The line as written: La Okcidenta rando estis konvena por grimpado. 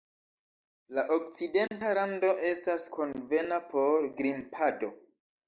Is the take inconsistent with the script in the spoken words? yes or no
yes